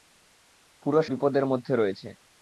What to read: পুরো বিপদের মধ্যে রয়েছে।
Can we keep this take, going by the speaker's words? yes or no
yes